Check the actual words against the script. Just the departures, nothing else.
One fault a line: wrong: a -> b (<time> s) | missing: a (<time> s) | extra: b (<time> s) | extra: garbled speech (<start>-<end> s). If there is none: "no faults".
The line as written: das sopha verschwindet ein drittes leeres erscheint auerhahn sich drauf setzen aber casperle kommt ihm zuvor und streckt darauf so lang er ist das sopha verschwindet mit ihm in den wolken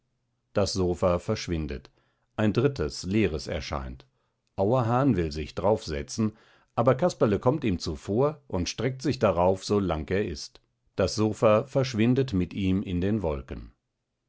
extra: will (5.2 s)
extra: sich (9.0 s)